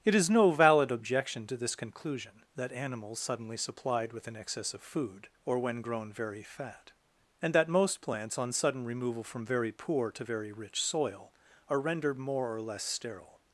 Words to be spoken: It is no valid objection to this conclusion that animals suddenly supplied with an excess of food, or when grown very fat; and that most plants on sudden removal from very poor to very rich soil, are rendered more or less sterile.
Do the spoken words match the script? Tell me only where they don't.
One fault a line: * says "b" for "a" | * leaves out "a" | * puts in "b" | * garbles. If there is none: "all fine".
all fine